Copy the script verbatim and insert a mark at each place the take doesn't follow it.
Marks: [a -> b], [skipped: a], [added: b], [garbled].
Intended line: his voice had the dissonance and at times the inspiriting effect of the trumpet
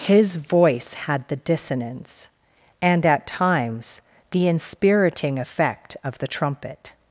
his voice had the dissonance and at times the inspiriting effect of the trumpet